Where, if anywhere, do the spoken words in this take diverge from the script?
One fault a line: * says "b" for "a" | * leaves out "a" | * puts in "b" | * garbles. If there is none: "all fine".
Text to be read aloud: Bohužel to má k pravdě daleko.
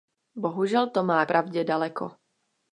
* leaves out "k"